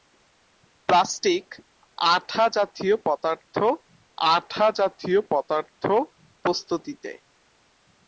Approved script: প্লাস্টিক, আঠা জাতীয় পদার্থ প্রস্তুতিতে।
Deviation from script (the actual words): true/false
true